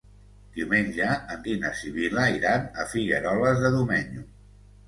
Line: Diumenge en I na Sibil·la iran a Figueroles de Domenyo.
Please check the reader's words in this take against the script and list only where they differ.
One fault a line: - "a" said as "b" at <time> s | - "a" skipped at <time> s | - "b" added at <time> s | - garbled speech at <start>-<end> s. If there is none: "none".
none